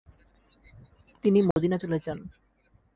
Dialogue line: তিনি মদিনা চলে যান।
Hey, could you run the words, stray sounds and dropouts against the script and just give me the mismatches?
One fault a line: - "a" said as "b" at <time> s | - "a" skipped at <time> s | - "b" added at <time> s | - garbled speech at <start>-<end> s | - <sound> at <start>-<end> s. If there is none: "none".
- dropout at 1.5-1.6 s